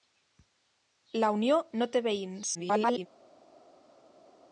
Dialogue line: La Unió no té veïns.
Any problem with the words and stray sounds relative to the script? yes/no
yes